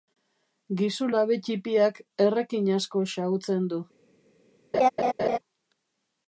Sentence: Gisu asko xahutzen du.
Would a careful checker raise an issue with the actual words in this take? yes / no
yes